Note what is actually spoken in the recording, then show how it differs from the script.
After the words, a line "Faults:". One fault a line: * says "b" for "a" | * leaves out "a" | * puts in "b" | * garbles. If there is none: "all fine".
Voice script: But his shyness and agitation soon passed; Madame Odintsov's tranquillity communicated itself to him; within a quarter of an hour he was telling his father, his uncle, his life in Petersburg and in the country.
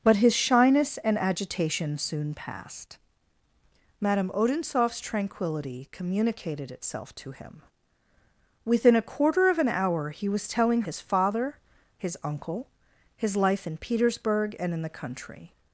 But his shyness and agitation soon passed; Madame Odintsov's tranquillity communicated itself to him; within a quarter of an hour he was telling his father, his uncle, his life in Petersburg and in the country.
Faults:
all fine